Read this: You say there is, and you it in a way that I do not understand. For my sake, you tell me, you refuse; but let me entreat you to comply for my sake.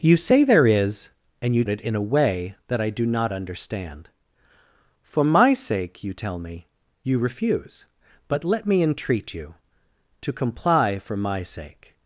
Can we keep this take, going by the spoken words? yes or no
yes